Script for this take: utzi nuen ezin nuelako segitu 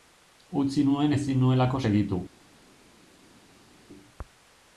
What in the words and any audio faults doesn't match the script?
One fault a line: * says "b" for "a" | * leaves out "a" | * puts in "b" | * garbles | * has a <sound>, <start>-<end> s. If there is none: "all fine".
all fine